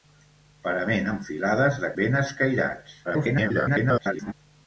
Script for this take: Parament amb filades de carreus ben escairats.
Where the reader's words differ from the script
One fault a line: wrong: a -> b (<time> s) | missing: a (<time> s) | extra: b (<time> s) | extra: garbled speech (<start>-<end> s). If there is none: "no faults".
missing: carreus (1.9 s)
extra: garbled speech (3.0-4.3 s)